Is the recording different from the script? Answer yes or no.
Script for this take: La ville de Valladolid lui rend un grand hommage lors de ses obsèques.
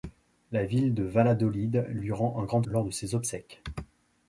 yes